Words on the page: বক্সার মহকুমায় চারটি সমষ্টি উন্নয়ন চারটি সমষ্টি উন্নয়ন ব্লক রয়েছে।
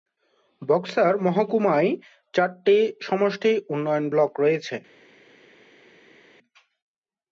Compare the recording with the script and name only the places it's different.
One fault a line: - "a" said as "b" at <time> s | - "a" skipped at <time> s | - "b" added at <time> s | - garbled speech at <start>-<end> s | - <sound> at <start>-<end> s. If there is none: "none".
- "চারটি সমষ্টি উন্নয়ন" skipped at 4.0 s